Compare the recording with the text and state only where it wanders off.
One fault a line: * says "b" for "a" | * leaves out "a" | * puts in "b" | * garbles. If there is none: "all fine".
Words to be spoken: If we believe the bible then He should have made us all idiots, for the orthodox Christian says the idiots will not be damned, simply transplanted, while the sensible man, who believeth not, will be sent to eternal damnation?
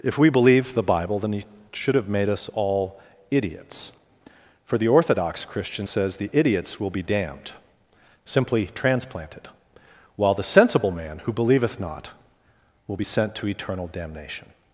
* leaves out "not"